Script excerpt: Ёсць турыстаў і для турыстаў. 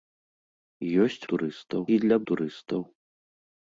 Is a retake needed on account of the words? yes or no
no